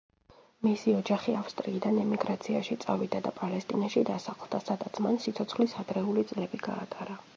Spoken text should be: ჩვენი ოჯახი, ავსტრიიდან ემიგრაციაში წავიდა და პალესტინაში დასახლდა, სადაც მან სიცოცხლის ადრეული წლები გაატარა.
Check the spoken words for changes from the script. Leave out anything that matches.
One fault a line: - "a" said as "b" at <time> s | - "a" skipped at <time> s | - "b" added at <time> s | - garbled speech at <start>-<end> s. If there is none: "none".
- "ჩვენი" said as "მისი" at 0.7 s